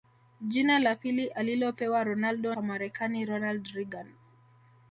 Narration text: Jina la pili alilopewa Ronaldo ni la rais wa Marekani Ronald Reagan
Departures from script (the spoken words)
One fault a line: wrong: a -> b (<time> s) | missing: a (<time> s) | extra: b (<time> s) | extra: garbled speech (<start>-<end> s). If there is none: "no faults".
missing: ni la rais (2.5 s)